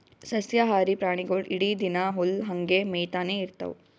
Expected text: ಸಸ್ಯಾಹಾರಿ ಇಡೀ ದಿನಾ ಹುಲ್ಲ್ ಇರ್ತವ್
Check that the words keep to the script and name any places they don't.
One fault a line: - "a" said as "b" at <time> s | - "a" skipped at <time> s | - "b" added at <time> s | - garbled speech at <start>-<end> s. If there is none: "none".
- "ಪ್ರಾಣಿಗೊಳ್" added at 1.0 s
- "ಹಂಗೆ ಮೇಯ್ತಾನೆ" added at 2.5 s